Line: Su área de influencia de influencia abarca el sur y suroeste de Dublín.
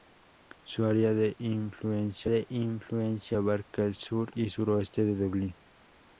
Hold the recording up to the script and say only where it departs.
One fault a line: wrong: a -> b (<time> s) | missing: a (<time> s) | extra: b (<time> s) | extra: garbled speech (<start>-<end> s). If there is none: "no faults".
no faults